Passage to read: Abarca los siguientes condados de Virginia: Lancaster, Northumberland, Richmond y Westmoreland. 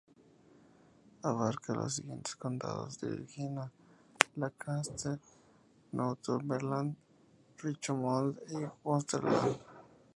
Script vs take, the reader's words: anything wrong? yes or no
no